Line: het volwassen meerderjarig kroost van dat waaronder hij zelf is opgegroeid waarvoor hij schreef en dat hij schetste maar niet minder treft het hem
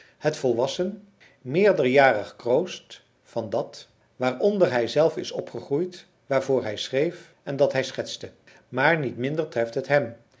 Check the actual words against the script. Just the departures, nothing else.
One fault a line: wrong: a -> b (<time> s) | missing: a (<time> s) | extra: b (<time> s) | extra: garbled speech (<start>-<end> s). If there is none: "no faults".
no faults